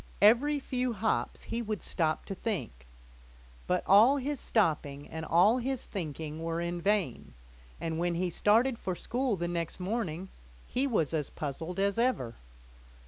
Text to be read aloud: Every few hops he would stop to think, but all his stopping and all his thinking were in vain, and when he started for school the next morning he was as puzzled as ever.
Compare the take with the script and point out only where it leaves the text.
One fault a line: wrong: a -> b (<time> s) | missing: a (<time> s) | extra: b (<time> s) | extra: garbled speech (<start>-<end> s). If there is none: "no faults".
no faults